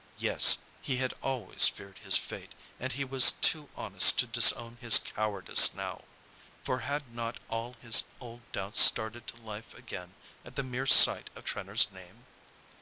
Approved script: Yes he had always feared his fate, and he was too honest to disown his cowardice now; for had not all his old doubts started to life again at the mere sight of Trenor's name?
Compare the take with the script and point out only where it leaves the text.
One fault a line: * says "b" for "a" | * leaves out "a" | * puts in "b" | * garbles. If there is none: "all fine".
all fine